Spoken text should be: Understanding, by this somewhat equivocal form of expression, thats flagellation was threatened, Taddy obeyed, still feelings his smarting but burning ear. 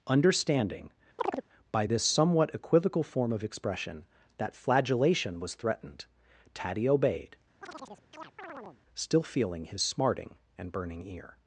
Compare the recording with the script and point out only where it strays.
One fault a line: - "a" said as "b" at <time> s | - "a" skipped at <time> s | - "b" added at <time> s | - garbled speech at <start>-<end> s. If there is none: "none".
- "thats" said as "that" at 4.4 s
- "feelings" said as "feeling" at 9.2 s
- "but" said as "and" at 10.6 s